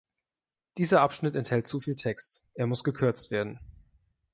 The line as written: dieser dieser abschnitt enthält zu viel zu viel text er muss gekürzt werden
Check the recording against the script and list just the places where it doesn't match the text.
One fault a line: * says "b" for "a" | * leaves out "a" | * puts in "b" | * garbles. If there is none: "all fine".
* leaves out "dieser"
* leaves out "zu viel"